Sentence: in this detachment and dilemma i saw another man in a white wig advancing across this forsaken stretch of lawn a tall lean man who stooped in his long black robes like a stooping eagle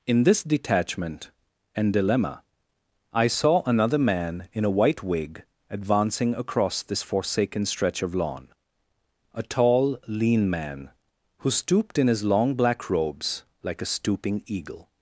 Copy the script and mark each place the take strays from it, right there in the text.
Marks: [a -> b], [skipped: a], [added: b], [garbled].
in this detachment and dilemma i saw another man in a white wig advancing across this forsaken stretch of lawn a tall lean man who stooped in his long black robes like a stooping eagle